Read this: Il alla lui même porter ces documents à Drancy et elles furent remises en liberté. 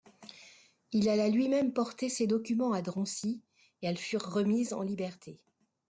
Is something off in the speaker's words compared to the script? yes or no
no